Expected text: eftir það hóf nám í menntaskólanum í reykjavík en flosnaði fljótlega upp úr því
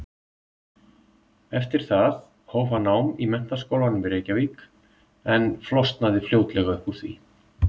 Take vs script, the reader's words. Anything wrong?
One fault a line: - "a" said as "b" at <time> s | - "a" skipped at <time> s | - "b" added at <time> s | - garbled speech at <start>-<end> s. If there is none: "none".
- "hann" added at 2.7 s